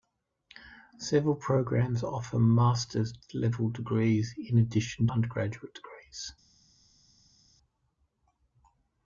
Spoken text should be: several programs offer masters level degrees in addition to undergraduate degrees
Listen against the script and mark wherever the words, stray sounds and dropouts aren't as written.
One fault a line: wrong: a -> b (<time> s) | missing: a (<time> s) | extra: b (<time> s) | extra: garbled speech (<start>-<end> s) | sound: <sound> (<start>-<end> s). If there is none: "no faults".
missing: to (5.0 s)